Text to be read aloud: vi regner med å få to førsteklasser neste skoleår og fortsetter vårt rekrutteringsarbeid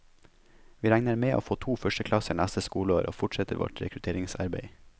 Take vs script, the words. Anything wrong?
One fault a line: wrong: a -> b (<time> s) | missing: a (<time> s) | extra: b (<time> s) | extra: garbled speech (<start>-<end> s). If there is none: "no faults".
no faults